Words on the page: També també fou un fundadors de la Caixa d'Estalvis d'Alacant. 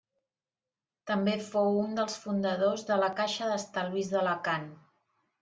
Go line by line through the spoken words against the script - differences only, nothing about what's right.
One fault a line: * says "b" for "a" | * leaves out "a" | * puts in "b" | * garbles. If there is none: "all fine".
* leaves out "també"
* puts in "dels"